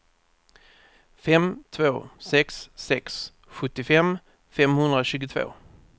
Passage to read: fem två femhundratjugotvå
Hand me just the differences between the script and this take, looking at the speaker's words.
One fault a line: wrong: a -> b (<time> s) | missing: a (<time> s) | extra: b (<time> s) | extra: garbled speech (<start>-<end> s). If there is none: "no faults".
extra: sex sex sjuttiofem (2.2 s)